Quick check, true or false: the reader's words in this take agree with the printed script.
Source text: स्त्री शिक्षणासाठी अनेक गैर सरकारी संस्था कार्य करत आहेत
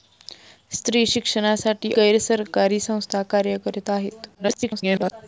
false